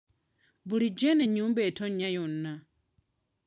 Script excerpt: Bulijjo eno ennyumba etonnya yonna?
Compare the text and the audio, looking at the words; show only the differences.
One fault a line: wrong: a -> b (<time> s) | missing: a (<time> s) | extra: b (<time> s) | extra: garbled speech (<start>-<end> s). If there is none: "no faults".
no faults